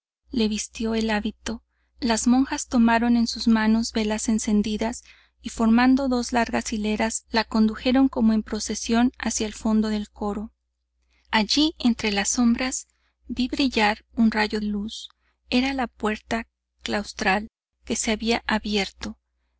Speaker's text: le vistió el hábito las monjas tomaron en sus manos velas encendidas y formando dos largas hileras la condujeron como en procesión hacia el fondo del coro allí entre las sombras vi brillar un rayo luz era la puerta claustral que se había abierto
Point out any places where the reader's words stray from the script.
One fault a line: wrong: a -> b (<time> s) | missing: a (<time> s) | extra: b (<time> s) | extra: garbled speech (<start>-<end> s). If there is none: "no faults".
no faults